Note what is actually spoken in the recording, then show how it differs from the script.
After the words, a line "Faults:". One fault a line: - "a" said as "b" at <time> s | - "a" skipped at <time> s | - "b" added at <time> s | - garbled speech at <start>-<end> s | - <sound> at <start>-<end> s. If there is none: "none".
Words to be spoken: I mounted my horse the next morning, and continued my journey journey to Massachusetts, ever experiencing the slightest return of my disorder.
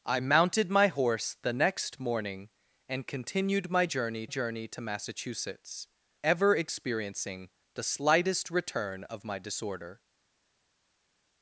I mounted my horse the next morning, and continued my journey journey to Massachusetts, ever experiencing the slightest return of my disorder.
Faults:
none